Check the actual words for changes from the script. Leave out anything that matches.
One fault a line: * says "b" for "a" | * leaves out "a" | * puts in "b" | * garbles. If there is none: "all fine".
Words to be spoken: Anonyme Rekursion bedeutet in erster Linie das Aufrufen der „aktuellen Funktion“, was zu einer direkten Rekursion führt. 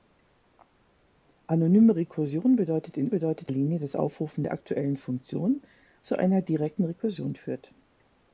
* says "bedeutet" for "erster"
* leaves out "was"